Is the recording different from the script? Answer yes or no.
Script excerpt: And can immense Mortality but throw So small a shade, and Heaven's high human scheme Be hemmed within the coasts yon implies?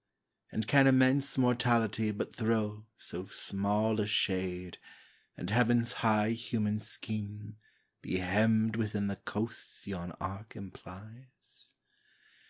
yes